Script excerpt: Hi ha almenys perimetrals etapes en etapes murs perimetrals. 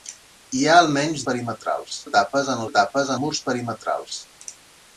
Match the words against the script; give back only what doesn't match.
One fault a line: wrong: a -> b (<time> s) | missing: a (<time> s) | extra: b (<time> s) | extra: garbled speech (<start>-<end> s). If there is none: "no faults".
no faults